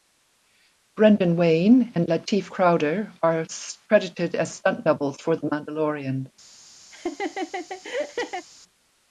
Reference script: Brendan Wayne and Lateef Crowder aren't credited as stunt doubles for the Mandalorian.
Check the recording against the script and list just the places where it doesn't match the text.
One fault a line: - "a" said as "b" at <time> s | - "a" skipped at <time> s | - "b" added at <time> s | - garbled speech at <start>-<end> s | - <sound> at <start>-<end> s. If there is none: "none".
- "aren't" said as "are" at 3.2 s
- laugh at 6.9-8.5 s